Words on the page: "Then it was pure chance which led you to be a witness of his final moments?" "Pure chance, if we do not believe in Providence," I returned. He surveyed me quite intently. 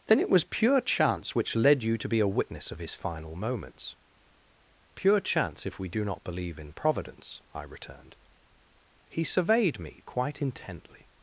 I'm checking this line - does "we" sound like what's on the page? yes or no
yes